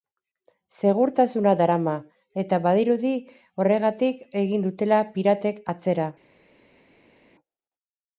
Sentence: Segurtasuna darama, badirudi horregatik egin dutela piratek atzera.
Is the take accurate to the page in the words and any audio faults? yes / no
no